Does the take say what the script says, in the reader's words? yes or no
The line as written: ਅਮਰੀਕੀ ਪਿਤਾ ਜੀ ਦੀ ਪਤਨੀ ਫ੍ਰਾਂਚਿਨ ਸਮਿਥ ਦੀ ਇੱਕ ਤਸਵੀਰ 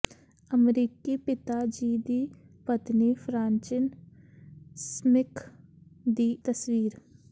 no